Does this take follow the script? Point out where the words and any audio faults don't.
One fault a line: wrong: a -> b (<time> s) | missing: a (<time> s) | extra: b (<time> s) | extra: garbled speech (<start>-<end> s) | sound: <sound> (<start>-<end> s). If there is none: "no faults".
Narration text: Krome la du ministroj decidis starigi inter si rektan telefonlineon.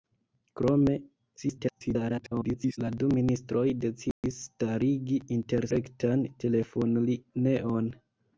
extra: garbled speech (1.4-2.8 s)
sound: dropout (4.1-4.2 s)
missing: si (5.7 s)